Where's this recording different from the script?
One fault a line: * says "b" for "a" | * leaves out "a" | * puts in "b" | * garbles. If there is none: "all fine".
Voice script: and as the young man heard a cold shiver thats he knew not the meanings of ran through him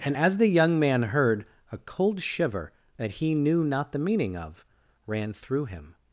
* says "that" for "thats"
* says "meaning" for "meanings"